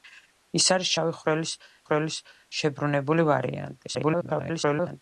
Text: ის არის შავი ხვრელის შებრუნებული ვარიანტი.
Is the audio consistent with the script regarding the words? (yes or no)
no